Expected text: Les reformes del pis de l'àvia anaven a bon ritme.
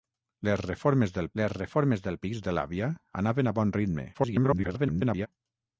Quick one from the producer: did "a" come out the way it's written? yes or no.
yes